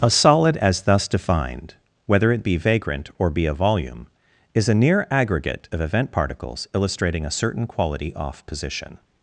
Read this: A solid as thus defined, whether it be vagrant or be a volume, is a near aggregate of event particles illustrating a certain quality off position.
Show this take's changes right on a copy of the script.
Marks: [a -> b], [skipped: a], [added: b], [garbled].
A solid as thus defined, whether it be vagrant or be a volume, is a near aggregate of event particles illustrating a certain quality off position.